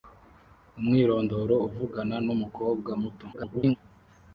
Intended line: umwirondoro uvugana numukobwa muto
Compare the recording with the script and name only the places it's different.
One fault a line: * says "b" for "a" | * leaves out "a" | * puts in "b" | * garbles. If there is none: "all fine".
* garbles